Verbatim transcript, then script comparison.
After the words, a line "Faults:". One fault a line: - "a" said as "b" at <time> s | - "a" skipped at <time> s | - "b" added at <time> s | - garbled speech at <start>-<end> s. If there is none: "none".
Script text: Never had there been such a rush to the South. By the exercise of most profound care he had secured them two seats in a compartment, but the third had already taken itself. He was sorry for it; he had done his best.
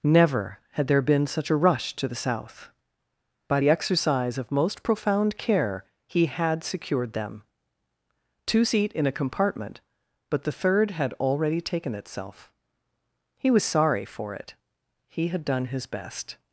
Never had there been such a rush to the South. By the exercise of most profound care he had secured them two seat in a compartment, but the third had already taken itself. He was sorry for it; he had done his best.
Faults:
- "seats" said as "seat" at 8.6 s